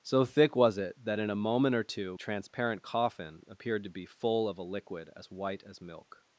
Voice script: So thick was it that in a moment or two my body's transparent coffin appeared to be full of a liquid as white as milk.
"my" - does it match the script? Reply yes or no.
no